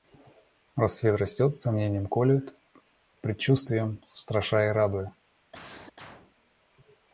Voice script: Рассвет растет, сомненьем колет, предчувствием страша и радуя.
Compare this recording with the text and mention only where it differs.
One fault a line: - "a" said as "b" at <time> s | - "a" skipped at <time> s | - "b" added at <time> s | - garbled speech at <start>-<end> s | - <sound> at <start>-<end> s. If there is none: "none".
- cough at 5.5-6.4 s